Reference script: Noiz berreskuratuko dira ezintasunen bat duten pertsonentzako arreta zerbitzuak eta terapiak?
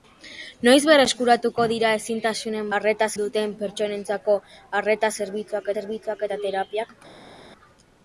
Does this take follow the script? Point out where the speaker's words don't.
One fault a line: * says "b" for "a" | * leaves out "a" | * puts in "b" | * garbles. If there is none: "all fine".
* says "arreta" for "bat"
* puts in "zerbitzuak"